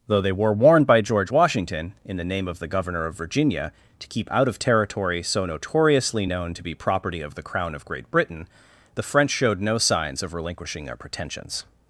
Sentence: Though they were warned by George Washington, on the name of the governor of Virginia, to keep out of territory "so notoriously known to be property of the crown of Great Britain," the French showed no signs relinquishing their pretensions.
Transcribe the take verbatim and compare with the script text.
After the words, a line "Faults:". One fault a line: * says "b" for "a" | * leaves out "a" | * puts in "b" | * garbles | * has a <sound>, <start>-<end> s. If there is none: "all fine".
Though they were warned by George Washington, in the name of the governor of Virginia, to keep out of territory "so notoriously known to be property of the crown of Great Britain," the French showed no signs of relinquishing their pretensions.
Faults:
* says "in" for "on"
* puts in "of"